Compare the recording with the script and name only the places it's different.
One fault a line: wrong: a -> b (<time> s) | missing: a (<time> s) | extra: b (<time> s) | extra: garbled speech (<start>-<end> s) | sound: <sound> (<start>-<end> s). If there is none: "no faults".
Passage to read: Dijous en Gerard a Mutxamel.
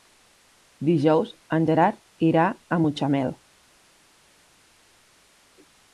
extra: irà (2.3 s)